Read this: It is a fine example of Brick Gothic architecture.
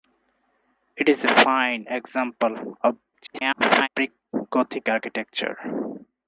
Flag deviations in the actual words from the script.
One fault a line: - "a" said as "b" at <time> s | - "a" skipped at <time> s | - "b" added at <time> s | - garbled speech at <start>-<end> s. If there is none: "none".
- garbled speech at 3.1-3.9 s